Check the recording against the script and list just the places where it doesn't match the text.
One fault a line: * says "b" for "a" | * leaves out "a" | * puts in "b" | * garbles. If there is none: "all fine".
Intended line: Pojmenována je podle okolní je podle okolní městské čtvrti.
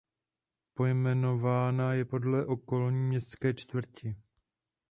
* leaves out "je podle okolní"